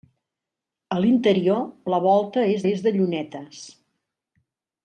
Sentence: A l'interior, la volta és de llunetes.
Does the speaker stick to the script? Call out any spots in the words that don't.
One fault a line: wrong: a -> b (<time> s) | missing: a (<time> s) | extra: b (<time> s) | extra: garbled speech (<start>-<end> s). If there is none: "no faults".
extra: és (2.7 s)